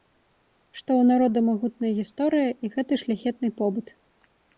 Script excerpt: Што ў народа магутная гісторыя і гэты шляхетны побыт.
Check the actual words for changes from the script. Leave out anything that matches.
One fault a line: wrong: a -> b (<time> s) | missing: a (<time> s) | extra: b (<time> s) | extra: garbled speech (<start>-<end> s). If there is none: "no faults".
no faults